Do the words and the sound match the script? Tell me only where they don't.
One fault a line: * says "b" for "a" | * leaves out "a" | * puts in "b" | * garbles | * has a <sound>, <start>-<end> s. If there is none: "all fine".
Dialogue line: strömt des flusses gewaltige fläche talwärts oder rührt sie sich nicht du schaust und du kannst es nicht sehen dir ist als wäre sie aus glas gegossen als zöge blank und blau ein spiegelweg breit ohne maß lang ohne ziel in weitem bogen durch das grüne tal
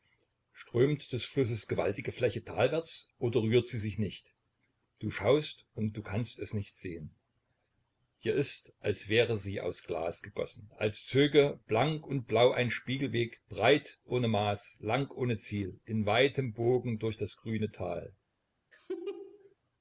* has a laugh, 18.7-19.6 s